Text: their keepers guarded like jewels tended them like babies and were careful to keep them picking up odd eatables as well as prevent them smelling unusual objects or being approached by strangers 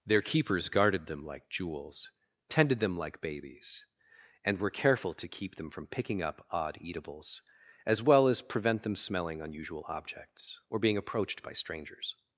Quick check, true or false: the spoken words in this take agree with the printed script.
false